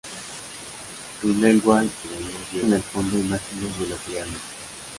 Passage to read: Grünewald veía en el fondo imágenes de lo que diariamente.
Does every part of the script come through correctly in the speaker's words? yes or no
yes